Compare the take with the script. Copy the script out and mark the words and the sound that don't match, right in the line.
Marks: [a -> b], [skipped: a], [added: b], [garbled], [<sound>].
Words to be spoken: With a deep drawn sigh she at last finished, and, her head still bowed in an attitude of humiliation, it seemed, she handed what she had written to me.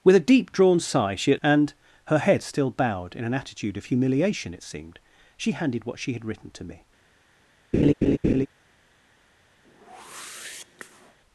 With a deep drawn sigh she at [skipped: last finished,] and, her head still bowed in an attitude of humiliation, it seemed, she handed what she had written to me. [laugh] [whoosh]